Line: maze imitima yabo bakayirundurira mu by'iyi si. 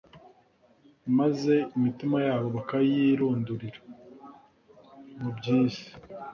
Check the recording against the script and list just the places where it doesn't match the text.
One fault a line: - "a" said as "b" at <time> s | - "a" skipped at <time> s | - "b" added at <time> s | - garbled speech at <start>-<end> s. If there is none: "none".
none